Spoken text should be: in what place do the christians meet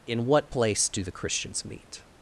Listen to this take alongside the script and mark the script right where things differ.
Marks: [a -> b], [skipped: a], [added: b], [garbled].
in what place do the christians meet